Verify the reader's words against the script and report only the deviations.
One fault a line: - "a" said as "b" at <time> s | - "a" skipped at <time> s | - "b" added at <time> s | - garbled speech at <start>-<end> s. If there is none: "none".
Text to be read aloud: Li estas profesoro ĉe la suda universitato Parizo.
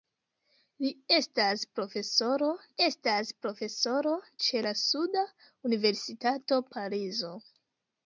- "estas profesoro" added at 2.9 s